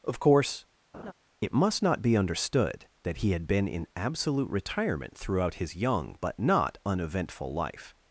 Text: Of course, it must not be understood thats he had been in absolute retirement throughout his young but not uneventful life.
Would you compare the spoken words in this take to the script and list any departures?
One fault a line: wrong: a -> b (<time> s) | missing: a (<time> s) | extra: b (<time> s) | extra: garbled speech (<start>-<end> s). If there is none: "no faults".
wrong: thats -> that (3.0 s)